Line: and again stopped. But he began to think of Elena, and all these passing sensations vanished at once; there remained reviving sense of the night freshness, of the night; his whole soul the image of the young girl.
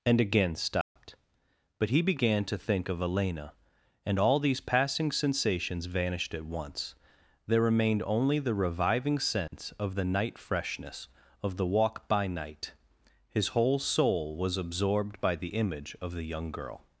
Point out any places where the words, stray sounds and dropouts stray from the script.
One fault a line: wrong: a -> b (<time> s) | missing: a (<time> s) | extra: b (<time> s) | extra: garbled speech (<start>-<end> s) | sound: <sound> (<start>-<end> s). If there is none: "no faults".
sound: dropout (0.8-1.0 s)
extra: only the (8.1 s)
sound: dropout (9.5-9.5 s)
extra: walk by (11.7 s)
extra: was absorbed by (14.3 s)